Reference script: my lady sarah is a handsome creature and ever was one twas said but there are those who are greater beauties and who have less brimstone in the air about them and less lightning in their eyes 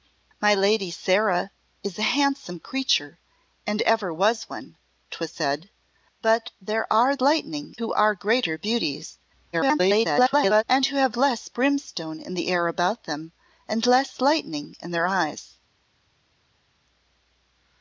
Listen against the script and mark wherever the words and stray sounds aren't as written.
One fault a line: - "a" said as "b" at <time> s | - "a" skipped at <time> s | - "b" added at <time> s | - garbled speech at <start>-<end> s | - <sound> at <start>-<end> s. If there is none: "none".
- "those" said as "lightning" at 7.2 s
- garbled speech at 9.5-10.6 s